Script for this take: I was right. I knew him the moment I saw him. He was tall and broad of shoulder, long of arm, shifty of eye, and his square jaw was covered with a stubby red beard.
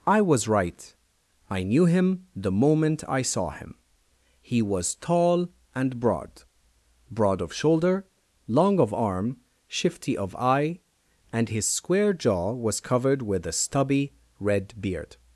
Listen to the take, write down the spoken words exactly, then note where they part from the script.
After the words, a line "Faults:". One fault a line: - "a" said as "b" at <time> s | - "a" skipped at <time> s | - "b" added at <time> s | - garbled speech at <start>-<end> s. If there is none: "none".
I was right. I knew him the moment I saw him. He was tall and broad broad of shoulder, long of arm, shifty of eye, and his square jaw was covered with a stubby red beard.
Faults:
- "broad" added at 7.1 s